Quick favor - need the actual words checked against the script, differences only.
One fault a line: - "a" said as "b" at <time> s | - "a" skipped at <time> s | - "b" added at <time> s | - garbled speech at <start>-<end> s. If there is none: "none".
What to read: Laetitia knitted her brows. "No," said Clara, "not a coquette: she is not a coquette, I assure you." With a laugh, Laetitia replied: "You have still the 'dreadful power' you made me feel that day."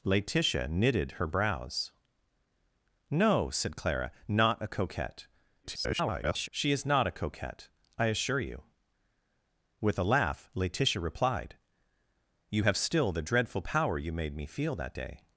- garbled speech at 5.6-6.5 s